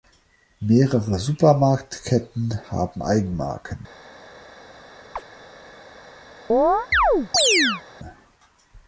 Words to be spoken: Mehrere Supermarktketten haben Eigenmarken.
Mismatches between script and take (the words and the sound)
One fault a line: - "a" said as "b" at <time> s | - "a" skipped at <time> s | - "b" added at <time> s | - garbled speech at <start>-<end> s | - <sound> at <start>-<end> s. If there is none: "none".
- chirp at 5.2-5.3 s
- chirp at 6.5-7.8 s